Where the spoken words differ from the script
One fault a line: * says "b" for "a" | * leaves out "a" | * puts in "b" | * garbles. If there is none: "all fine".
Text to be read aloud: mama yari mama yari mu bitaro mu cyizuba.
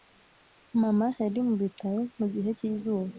* leaves out "mama yari"
* puts in "gihe"